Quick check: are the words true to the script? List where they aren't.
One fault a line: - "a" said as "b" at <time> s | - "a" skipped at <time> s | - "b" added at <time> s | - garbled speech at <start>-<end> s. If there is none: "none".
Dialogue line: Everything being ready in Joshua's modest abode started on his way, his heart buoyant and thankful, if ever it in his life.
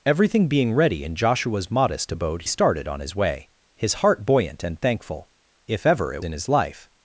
none